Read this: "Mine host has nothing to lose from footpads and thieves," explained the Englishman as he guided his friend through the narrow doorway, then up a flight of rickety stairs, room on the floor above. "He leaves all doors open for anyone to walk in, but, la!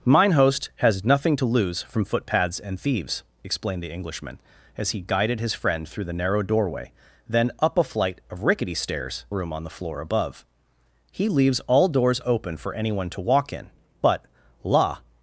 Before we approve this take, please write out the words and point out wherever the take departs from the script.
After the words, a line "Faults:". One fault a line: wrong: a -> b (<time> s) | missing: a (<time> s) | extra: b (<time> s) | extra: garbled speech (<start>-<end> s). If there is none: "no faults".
"Mine host has nothing to lose from footpads and thieves," explained the Englishman as he guided his friend through the narrow doorway, then up a flight of rickety stairs, room on the floor above. "He leaves all doors open for anyone to walk in, but, la!
Faults:
no faults